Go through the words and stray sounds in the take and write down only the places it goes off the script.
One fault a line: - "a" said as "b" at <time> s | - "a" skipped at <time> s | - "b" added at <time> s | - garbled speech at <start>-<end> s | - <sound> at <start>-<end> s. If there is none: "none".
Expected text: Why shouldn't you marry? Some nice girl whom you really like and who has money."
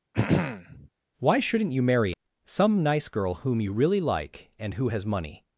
- throat clearing at 0.1-0.9 s